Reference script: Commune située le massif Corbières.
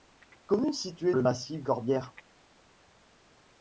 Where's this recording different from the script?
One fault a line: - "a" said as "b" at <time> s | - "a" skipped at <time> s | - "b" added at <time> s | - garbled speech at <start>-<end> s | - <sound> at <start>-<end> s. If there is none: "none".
none